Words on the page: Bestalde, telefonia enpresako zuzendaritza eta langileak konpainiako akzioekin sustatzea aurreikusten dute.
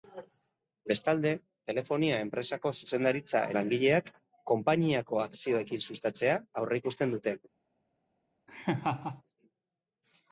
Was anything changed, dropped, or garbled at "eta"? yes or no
yes